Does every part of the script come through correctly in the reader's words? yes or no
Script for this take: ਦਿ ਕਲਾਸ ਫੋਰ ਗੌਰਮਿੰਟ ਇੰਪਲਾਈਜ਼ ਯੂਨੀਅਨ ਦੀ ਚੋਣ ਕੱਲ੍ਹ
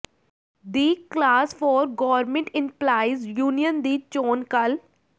yes